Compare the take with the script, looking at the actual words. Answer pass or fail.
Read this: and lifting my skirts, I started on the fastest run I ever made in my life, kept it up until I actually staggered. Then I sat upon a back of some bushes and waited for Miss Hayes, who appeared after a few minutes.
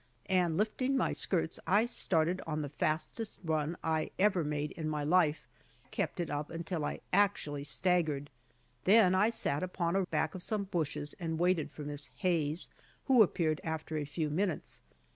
pass